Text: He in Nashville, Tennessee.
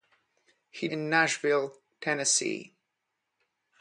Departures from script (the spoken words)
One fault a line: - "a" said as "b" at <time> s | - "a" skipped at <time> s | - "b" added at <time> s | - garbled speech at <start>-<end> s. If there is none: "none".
none